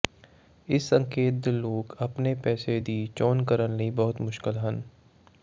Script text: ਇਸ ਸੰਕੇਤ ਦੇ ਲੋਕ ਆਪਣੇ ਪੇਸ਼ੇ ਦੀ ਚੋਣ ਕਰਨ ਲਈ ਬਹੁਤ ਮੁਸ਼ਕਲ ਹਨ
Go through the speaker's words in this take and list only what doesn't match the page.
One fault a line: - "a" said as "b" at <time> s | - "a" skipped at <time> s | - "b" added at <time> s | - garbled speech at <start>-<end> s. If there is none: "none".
none